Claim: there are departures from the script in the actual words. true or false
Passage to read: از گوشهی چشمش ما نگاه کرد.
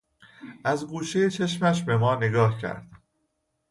true